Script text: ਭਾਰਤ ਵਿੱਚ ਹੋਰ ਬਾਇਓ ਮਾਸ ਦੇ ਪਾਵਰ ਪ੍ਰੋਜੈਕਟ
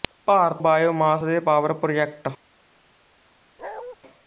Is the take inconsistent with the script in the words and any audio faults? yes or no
yes